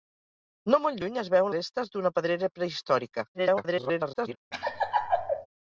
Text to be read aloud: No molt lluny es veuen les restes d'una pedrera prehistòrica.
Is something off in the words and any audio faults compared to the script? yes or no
yes